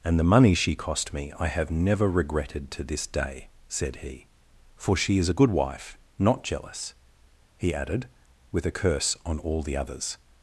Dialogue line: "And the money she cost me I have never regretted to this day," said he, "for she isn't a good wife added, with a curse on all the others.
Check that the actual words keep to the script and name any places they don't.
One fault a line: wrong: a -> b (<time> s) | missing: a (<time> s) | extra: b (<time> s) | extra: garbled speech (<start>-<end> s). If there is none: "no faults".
wrong: isn't -> is (5.2 s)
extra: not jealous he (6.2 s)